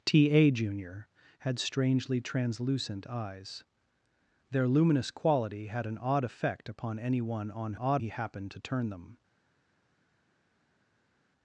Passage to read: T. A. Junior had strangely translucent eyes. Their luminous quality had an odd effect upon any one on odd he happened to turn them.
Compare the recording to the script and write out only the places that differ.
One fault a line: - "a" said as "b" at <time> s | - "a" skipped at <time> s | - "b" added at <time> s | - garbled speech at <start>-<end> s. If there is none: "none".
none